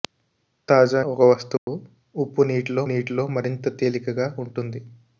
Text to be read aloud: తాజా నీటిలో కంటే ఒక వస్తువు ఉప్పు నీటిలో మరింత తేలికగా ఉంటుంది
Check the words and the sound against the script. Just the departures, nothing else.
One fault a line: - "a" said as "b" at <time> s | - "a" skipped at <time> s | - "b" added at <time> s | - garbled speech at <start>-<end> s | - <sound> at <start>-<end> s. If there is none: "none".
- "నీటిలో కంటే" skipped at 1.0 s
- dropout at 1.6-1.7 s
- "నీటిలో" added at 2.8 s